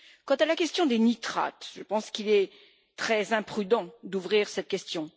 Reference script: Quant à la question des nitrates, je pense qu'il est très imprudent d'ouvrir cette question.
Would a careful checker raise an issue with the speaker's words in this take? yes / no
no